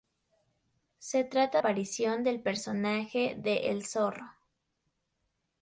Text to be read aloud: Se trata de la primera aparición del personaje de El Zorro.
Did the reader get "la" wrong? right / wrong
wrong